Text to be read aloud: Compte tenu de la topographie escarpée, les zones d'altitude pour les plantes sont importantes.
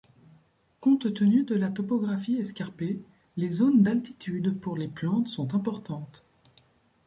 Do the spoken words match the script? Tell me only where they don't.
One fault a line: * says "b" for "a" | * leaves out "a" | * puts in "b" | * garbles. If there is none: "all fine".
all fine